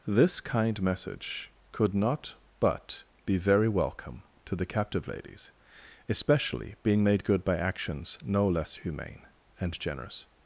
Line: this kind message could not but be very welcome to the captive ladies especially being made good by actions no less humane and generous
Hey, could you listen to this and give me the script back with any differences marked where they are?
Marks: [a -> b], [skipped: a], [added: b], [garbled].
this kind message could not but be very welcome to the captive ladies especially being made good by actions no less humane and generous